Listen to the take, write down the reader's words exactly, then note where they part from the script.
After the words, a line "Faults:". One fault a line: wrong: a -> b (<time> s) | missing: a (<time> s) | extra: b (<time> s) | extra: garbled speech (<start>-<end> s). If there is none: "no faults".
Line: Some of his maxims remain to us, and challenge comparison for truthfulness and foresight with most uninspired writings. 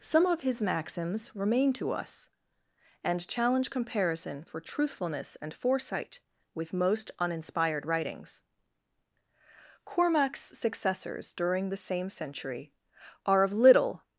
Some of his maxims remain to us, and challenge comparison for truthfulness and foresight with most uninspired writings. Cormac's successors during the same century are of little
Faults:
extra: Cormac's successors during the same century are of little (9.8 s)